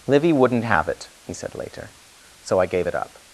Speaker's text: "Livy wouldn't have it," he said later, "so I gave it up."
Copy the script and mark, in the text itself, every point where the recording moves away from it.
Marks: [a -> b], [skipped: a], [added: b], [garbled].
"Livy wouldn't have it," he said later, "so I gave it up."